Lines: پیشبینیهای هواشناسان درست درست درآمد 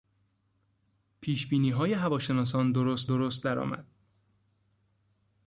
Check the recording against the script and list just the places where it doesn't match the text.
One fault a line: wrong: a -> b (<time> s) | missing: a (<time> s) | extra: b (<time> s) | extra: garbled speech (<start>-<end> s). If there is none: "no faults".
no faults